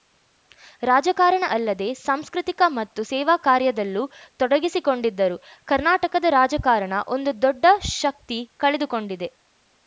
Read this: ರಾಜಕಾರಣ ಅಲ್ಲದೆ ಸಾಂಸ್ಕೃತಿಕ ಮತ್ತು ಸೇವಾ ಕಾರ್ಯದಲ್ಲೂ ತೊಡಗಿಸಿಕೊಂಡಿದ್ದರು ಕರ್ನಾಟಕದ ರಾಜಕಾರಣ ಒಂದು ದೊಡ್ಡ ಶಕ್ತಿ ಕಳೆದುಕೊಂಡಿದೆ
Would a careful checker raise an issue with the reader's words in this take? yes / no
no